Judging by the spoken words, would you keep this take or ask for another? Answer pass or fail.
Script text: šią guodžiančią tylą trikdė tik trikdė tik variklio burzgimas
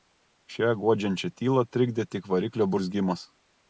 fail